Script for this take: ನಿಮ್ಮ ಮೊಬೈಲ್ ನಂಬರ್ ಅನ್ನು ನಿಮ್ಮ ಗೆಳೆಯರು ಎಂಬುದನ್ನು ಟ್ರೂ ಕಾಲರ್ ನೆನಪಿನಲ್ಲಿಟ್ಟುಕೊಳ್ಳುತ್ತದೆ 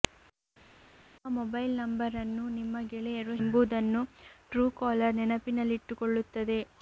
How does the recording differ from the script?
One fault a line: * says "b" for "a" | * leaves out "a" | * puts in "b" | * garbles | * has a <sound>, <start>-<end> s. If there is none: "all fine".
all fine